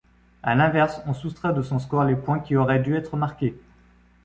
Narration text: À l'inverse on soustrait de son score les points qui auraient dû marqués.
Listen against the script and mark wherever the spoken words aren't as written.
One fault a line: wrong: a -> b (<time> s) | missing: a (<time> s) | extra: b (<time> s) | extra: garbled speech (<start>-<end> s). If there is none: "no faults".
extra: être (3.0 s)